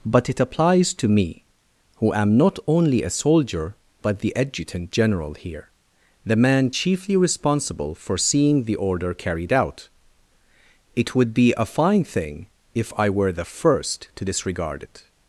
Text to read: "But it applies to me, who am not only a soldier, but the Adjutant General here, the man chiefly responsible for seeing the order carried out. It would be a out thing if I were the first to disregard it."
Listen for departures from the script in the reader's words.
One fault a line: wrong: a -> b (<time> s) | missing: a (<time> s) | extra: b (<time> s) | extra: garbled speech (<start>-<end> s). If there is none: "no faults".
wrong: out -> fine (11.6 s)